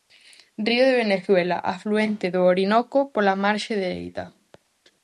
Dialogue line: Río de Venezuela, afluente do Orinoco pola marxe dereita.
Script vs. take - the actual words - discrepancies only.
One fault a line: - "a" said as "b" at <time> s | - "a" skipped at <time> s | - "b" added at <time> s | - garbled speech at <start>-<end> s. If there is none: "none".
none